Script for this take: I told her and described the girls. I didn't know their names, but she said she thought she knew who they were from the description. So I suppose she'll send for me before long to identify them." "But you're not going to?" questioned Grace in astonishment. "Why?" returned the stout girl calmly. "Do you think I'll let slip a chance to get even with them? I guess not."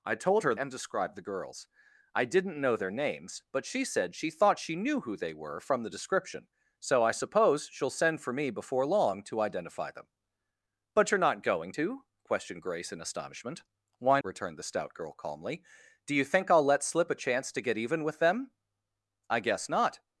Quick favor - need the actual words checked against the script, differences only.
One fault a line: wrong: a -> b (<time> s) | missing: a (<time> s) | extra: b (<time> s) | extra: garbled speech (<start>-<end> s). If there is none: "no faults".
no faults